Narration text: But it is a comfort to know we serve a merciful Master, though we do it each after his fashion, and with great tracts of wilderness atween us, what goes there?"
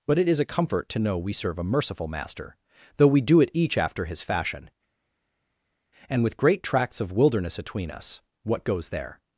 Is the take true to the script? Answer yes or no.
yes